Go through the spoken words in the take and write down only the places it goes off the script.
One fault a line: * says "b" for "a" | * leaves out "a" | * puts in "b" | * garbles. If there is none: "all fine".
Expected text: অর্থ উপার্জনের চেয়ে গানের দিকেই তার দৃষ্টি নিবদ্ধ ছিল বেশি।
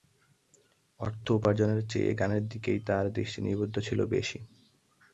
all fine